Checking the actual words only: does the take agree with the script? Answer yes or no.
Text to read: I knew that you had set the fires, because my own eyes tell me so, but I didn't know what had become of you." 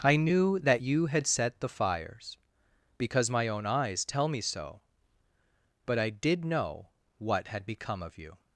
no